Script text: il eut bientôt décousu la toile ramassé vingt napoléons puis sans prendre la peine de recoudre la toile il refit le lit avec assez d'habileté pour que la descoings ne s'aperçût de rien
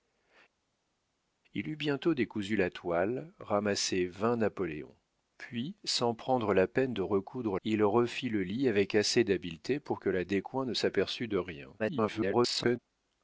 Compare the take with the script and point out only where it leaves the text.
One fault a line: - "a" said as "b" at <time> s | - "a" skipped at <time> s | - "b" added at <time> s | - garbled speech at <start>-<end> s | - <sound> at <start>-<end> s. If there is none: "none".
- "la toile" skipped at 7.6 s
- garbled speech at 11.8-12.8 s